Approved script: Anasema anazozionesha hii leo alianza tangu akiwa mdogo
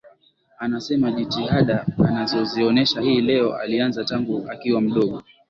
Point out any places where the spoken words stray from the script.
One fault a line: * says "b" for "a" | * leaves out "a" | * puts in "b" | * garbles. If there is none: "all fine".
* puts in "jitihada"